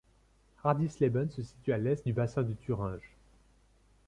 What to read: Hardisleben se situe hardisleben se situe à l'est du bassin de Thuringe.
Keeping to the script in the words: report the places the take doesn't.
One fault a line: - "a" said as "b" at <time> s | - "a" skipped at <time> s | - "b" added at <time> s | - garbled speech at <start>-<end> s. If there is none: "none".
- "hardisleben se situe" skipped at 1.7 s